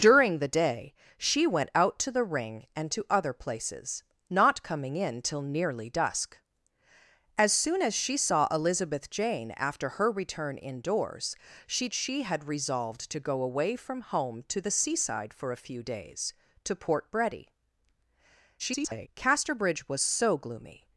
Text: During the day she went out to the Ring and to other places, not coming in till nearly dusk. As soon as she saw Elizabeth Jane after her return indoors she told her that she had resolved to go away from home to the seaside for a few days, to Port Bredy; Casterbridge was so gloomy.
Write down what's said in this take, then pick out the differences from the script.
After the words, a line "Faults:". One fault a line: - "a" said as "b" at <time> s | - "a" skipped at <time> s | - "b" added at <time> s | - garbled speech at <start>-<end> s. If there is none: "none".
During the day she went out to the Ring and to other places, not coming in till nearly dusk. As soon as she saw Elizabeth Jane after her return indoors she she had resolved to go away from home to the seaside for a few days, to Port Bredy; [garbled] Casterbridge was so gloomy.
Faults:
- "told her that" skipped at 11.9 s
- garbled speech at 18.6-19.1 s